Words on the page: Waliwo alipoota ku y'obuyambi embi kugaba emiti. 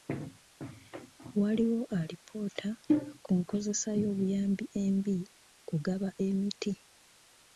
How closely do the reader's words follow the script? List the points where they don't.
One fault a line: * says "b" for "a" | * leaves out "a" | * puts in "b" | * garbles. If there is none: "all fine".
* puts in "nkozesa"